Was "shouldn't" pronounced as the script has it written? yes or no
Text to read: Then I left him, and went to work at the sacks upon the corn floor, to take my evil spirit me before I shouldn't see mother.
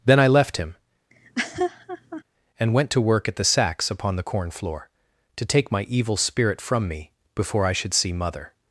no